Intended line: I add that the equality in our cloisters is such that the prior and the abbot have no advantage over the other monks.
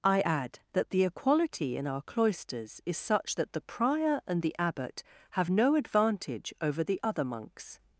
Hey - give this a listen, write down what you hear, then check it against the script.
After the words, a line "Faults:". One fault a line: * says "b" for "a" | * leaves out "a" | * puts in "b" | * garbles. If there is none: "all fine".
I add that the equality in our cloisters is such that the prior and the abbot have no advantage over the other monks.
Faults:
all fine